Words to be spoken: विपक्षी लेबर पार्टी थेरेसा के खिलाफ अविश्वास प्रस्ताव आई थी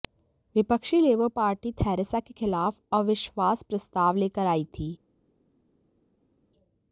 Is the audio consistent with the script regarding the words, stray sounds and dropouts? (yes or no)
no